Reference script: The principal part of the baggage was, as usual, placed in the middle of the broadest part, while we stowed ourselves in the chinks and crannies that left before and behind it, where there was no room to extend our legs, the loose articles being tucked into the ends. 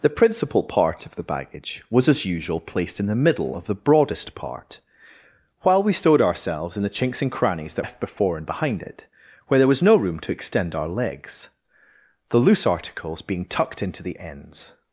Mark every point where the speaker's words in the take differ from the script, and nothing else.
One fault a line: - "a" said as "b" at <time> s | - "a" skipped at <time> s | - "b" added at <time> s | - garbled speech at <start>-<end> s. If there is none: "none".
none